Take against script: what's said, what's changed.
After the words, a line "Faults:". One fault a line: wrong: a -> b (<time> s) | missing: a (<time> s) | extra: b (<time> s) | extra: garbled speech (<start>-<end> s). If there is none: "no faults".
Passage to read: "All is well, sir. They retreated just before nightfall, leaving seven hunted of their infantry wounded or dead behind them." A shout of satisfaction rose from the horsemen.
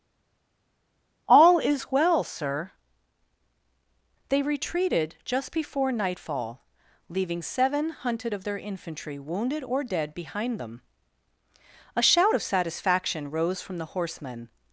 "All is well, sir. They retreated just before nightfall, leaving seven hunted of their infantry wounded or dead behind them." A shout of satisfaction rose from the horsemen.
Faults:
no faults